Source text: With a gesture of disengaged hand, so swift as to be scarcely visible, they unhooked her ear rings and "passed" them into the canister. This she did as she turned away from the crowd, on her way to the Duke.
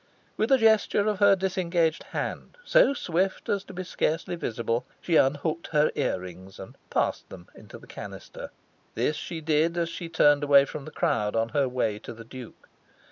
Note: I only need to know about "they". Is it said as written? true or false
false